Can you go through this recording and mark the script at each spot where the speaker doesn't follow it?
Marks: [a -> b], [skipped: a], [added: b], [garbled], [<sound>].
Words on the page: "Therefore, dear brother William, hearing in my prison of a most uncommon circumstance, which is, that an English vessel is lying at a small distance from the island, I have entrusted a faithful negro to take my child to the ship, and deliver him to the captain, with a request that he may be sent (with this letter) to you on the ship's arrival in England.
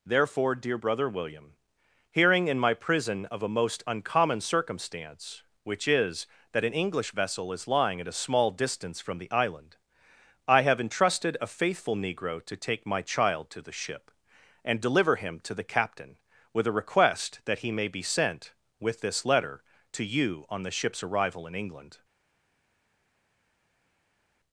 "Therefore, dear brother William, hearing in my prison of a most uncommon circumstance, which is, that an English vessel is lying at a small distance from the island, I have entrusted a faithful negro to take my child to the ship, and deliver him to the captain, with a request that he may be sent (with this letter) to you on the ship's arrival in England.